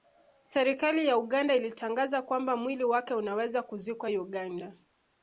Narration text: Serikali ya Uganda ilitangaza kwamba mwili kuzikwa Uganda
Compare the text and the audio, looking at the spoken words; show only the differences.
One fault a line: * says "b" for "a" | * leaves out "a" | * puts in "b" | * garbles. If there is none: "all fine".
* puts in "wake unaweza"